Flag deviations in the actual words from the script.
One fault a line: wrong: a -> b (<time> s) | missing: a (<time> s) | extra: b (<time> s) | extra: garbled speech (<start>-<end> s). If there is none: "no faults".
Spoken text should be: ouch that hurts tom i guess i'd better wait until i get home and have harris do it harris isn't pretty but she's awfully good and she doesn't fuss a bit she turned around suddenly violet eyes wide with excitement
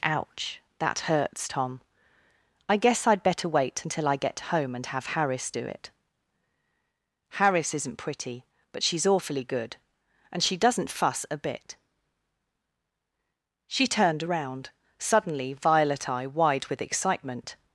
wrong: eyes -> eye (16.1 s)